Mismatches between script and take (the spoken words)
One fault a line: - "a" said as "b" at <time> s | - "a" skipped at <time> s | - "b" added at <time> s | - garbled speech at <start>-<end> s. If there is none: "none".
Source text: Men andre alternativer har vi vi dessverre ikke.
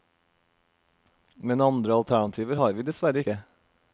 - "vi" skipped at 2.9 s